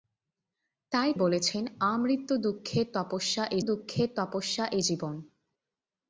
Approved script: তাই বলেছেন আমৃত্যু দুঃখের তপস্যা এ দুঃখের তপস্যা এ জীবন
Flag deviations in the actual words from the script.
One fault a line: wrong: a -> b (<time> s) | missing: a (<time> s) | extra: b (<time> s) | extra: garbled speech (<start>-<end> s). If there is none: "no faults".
no faults